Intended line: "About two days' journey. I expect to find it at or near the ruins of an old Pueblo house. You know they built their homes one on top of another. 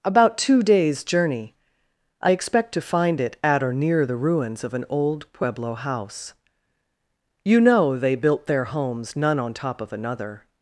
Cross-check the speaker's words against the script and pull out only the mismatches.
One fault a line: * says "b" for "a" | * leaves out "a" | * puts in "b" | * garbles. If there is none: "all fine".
* says "none" for "one"